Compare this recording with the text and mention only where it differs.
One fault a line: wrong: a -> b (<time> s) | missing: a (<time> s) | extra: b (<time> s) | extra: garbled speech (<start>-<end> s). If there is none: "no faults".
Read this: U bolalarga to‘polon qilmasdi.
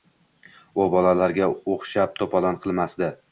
extra: o‘xshab (1.7 s)